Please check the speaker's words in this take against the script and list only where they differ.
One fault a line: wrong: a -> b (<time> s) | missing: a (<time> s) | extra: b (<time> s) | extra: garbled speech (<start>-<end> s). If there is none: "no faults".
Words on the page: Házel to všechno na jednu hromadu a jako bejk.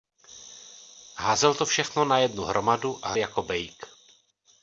no faults